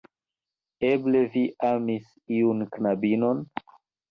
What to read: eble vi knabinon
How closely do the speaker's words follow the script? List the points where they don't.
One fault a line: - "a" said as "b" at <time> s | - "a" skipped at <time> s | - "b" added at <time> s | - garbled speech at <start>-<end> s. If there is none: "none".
- "amis iun" added at 1.7 s